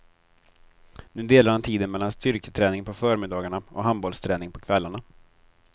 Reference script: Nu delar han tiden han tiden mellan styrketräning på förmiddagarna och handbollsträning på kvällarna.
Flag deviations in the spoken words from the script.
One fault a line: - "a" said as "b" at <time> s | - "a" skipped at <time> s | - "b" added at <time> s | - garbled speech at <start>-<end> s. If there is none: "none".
- "han tiden" skipped at 1.9 s